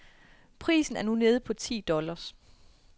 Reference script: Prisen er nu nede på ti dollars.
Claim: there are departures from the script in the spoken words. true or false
false